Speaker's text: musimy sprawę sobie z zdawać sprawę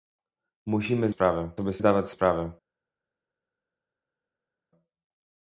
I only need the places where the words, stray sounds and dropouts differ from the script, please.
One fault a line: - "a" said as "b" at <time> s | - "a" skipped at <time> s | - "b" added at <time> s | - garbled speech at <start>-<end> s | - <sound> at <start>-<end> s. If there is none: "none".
none